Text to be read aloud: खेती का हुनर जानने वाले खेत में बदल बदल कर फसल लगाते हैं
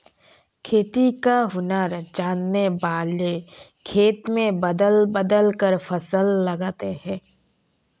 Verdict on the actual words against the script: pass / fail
pass